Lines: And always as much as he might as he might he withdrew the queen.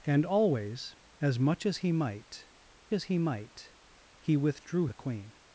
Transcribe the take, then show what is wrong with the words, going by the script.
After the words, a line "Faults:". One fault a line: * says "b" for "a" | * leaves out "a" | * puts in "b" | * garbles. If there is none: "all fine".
And always as much as he might as he might he withdrew the queen.
Faults:
all fine